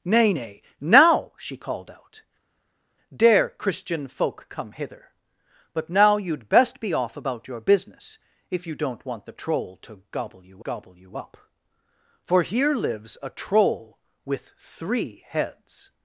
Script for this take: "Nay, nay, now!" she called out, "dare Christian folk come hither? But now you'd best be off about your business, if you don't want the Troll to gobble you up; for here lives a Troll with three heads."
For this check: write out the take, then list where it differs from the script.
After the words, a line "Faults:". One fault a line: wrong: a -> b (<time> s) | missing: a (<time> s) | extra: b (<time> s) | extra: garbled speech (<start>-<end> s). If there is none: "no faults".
"Nay, nay, now!" she called out, "dare Christian folk come hither? But now you'd best be off about your business, if you don't want the Troll to gobble you gobble you up; for here lives a Troll with three heads."
Faults:
extra: gobble you (10.6 s)